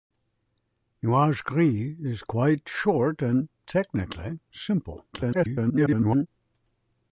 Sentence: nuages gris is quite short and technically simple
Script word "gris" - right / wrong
right